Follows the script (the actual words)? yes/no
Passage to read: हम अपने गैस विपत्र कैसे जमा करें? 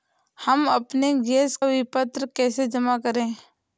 yes